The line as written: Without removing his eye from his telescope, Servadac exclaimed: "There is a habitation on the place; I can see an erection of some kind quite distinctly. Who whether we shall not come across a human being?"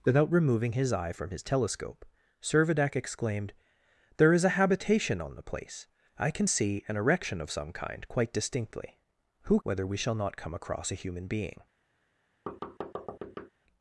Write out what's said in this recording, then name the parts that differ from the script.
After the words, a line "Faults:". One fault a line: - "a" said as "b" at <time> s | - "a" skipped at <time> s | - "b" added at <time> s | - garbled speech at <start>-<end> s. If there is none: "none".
Without removing his eye from his telescope, Servadac exclaimed: "There is a habitation on the place; I can see an erection of some kind quite distinctly. Who whether we shall not come across a human being?"
Faults:
none